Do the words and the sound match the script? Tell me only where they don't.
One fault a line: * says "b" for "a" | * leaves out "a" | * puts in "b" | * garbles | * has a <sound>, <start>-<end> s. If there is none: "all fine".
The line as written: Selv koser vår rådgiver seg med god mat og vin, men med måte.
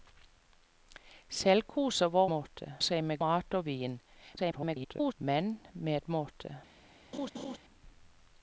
* says "måte" for "rådgiver"
* leaves out "god"
* garbles
* has a laugh, 7.1-7.6 s